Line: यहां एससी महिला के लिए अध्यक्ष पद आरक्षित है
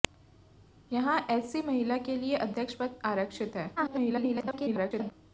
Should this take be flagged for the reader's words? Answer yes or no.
yes